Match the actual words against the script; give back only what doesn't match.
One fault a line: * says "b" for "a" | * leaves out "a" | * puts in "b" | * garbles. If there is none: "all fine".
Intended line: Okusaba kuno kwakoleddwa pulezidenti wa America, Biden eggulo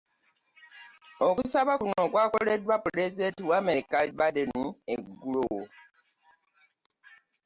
all fine